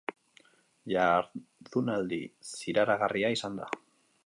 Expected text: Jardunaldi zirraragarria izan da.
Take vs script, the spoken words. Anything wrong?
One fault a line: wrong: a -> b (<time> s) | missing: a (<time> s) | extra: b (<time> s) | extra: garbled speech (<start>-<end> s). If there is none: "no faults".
no faults